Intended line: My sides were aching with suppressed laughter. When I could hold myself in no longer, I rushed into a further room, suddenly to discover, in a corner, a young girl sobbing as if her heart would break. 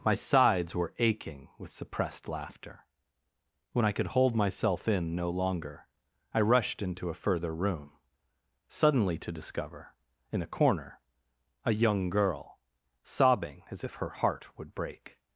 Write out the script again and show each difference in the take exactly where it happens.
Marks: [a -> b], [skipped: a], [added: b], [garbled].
My sides were aching with suppressed laughter. When I could hold myself in no longer, I rushed into a further room, suddenly to discover, in a corner, a young girl sobbing as if her heart would break.